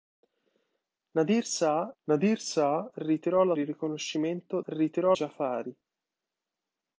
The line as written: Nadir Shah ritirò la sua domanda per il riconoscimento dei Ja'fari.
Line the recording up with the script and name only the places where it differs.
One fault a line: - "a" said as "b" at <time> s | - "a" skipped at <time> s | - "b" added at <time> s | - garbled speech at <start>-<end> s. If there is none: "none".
- "nadir Shah" added at 2.0 s
- "sua domanda per" skipped at 3.5 s
- "dei" said as "ritirò" at 4.6 s